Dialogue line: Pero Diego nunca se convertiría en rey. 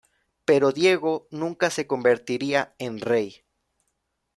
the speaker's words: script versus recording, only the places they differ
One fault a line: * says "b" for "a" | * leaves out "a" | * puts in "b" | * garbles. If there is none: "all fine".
all fine